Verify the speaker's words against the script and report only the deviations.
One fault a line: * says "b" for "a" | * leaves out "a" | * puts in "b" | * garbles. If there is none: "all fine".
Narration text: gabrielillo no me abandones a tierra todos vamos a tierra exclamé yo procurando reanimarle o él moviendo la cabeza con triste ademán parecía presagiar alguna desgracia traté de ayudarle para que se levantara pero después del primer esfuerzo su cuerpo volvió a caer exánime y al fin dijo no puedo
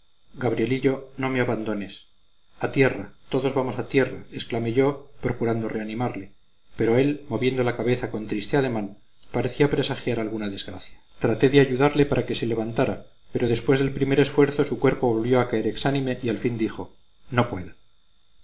* says "pero" for "o"